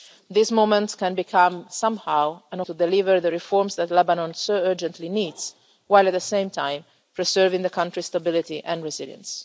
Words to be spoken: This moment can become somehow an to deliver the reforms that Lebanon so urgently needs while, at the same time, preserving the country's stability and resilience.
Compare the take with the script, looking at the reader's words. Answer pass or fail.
pass